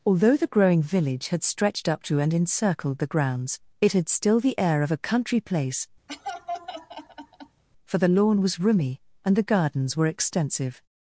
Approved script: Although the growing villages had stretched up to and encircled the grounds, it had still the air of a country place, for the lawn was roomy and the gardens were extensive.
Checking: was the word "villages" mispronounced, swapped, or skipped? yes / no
yes